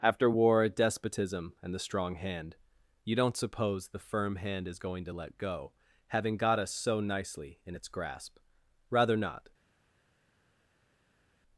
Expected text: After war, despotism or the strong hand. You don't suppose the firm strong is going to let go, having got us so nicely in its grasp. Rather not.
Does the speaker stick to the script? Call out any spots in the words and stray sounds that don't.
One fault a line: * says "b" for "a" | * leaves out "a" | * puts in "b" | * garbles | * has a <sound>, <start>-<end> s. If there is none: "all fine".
* says "and" for "or"
* says "hand" for "strong"